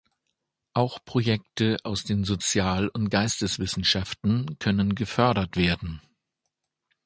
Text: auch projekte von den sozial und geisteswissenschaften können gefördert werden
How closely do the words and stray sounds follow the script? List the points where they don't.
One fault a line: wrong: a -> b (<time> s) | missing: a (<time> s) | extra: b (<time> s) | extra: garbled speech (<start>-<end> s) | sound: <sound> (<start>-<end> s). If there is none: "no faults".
wrong: von -> aus (1.8 s)